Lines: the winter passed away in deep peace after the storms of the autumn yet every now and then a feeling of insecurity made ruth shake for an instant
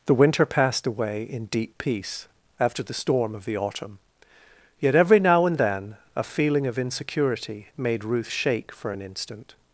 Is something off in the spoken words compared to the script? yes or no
yes